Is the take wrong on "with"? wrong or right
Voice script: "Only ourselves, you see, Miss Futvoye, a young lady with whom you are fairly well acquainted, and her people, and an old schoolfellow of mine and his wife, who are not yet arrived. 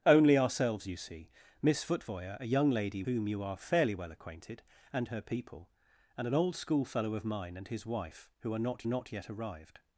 wrong